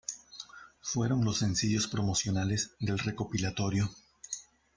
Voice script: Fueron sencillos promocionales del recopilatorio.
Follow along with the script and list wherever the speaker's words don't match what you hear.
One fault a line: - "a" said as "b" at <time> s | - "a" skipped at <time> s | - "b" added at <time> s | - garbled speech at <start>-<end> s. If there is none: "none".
- "los" added at 1.2 s